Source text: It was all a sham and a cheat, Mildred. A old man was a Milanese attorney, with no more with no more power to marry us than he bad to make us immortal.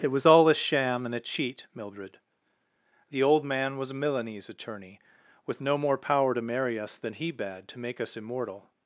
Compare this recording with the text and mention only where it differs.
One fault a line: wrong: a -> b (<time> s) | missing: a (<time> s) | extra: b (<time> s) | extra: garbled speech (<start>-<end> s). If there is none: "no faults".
wrong: A -> The (3.1 s)
missing: with no more (6.0 s)